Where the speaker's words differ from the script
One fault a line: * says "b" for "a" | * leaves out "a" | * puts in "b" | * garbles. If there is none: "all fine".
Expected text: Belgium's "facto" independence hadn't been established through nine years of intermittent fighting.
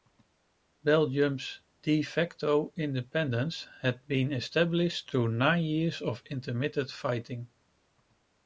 * puts in "de"
* says "had" for "hadn't"